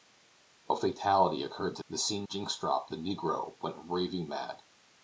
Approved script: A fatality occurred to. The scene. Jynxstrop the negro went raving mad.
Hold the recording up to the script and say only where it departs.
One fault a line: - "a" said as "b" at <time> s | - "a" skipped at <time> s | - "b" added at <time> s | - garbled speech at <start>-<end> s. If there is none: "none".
none